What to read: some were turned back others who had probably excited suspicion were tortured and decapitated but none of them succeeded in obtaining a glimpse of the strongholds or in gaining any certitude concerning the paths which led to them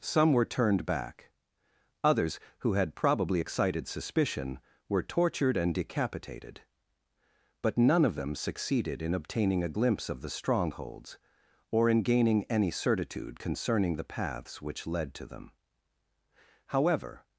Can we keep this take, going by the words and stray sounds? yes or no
no